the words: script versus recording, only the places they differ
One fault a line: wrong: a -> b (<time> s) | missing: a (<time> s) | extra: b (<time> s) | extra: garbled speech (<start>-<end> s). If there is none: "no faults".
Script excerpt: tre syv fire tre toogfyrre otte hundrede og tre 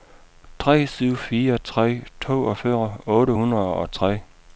no faults